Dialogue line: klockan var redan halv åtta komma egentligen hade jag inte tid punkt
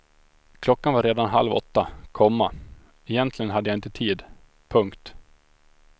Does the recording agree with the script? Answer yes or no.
yes